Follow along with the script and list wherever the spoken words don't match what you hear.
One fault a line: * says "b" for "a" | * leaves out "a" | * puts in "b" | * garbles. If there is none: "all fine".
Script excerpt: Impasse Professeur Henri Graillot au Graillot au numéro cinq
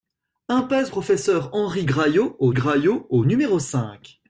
all fine